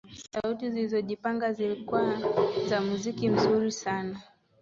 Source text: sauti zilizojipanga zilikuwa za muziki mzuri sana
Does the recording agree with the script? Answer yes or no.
yes